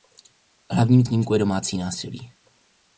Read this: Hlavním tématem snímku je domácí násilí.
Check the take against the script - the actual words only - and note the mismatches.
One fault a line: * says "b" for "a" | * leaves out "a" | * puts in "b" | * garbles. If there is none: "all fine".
* leaves out "tématem"